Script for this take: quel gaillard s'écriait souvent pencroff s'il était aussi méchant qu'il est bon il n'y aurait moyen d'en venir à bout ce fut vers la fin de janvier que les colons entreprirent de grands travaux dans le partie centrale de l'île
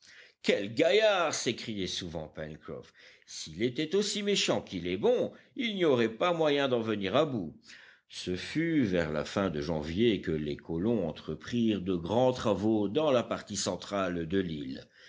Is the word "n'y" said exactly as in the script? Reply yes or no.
yes